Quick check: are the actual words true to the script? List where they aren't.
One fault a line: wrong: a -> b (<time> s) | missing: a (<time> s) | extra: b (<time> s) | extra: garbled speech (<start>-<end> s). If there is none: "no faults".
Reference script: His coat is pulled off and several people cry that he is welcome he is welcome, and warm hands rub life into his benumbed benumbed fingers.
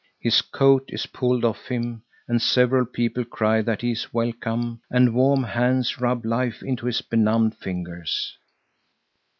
extra: him (1.7 s)
missing: he is welcome (4.8 s)
missing: benumbed (7.5 s)